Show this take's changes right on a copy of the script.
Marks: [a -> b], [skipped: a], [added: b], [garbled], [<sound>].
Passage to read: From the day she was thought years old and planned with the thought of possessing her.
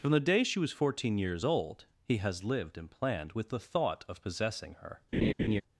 From the day she was [thought -> fourteen] years old [added: he has lived] and planned with the thought of possessing her. [laugh]